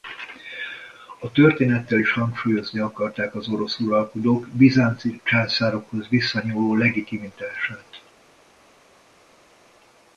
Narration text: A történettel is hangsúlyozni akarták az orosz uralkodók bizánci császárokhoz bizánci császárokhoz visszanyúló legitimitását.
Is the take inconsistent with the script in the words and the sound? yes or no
yes